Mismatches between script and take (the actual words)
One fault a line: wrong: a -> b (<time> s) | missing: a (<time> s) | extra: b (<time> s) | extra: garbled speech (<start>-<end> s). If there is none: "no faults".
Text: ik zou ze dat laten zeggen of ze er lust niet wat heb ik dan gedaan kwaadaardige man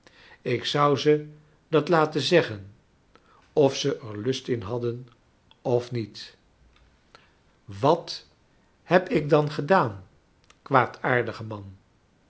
extra: in hadden of (4.5 s)